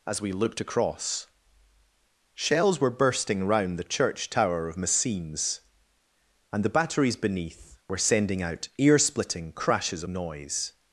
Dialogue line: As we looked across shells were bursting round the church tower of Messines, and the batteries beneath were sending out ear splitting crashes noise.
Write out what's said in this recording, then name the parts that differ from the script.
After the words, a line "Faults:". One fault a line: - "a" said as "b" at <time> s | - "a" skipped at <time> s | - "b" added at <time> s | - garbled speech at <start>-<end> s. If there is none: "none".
As we looked across shells were bursting round the church tower of Messines, and the batteries beneath were sending out ear splitting crashes noise.
Faults:
none